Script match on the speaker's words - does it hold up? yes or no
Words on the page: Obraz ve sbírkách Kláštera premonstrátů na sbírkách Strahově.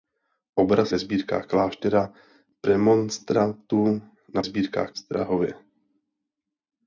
yes